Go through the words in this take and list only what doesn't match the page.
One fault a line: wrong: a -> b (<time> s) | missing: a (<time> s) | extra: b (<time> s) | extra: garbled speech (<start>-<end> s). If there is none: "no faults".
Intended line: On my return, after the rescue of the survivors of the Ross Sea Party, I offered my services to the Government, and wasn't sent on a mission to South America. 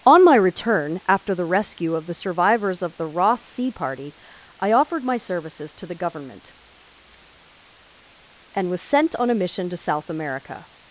wrong: wasn't -> was (8.7 s)